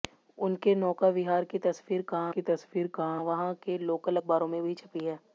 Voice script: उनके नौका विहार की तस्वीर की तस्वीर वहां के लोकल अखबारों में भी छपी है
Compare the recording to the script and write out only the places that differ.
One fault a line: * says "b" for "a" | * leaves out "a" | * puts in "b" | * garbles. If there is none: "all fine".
all fine